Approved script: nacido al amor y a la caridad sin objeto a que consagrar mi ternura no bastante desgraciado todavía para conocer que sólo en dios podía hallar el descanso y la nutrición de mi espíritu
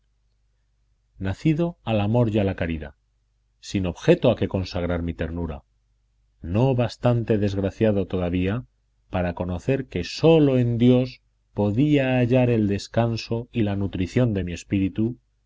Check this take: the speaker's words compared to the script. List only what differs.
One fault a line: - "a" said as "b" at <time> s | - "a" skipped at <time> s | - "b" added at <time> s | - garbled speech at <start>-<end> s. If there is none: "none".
none